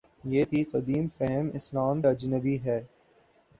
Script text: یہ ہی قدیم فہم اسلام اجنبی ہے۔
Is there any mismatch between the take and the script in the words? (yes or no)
no